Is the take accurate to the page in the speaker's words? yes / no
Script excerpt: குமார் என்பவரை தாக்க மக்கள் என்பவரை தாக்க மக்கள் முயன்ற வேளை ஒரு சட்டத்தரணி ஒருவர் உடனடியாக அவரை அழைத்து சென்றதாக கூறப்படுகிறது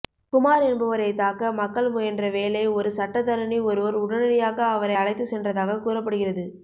no